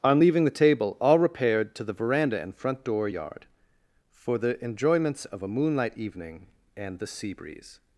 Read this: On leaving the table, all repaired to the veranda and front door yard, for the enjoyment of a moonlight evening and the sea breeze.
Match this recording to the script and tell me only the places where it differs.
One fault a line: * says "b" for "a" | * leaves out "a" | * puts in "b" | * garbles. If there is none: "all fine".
* says "enjoyments" for "enjoyment"